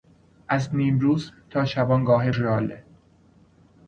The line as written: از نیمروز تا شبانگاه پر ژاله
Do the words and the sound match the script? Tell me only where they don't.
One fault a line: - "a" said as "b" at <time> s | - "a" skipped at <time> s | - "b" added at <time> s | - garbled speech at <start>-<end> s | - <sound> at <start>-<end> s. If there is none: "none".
- "پر" skipped at 2.3 s